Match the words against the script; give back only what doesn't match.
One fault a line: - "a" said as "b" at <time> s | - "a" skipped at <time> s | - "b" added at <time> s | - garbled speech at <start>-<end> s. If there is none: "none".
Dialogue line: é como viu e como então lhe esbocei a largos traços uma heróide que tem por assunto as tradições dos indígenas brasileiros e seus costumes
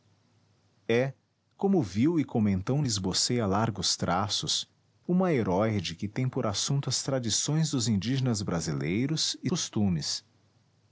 - "seus" skipped at 9.5 s